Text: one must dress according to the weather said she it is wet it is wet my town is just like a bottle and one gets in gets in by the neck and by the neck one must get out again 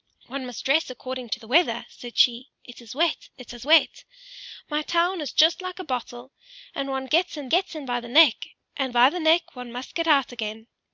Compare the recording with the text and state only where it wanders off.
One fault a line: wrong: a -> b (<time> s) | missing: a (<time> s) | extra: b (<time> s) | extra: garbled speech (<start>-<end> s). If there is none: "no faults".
no faults